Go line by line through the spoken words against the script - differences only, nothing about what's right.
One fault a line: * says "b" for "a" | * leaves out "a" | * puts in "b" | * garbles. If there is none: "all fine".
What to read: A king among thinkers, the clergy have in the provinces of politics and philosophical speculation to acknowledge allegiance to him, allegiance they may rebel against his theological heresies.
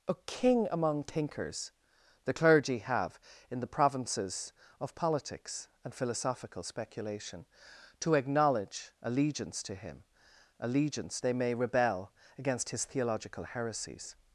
all fine